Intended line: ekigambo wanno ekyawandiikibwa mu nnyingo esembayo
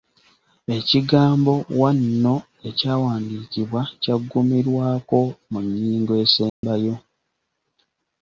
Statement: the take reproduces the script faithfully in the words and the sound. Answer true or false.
false